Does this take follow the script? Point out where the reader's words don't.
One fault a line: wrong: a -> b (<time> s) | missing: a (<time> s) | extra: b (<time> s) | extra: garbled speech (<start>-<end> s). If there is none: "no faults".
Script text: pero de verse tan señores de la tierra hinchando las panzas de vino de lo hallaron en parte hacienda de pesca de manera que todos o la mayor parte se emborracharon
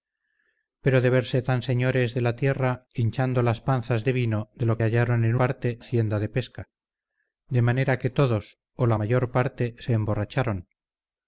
no faults